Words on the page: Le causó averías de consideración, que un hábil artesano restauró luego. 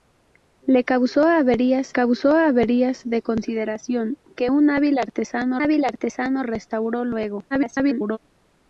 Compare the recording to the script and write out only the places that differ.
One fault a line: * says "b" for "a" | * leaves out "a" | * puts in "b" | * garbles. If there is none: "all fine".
* puts in "causó averías"
* puts in "hábil artesano"
* garbles